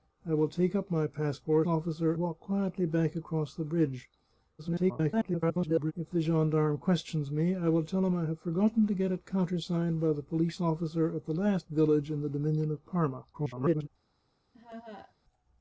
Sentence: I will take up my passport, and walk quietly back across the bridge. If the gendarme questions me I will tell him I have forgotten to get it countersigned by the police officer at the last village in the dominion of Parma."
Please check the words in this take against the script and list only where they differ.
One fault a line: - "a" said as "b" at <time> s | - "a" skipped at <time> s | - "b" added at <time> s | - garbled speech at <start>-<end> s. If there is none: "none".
- "and" said as "officer" at 1.7 s
- garbled speech at 4.6-5.9 s
- garbled speech at 13.3-13.9 s